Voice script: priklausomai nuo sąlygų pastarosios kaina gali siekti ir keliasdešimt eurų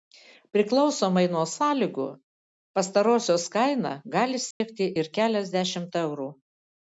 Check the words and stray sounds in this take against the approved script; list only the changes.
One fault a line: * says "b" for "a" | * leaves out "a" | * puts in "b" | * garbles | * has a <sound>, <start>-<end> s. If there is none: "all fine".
* has a dropout, 4.5-4.6 s